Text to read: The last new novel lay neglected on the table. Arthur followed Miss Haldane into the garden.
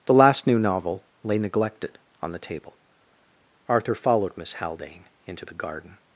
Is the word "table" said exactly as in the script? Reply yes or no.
yes